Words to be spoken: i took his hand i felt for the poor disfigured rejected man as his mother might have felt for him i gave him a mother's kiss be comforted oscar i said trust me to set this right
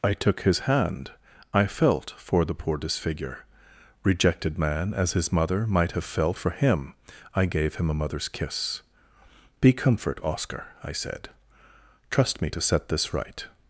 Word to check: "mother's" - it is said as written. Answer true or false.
true